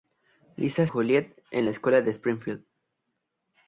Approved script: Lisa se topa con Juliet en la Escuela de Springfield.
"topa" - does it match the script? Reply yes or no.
no